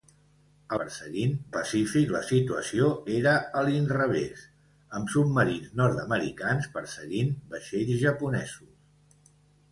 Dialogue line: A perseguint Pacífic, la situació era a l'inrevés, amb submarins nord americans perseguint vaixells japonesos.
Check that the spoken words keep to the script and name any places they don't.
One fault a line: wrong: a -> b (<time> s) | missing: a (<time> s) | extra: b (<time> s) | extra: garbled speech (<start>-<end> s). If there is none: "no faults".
no faults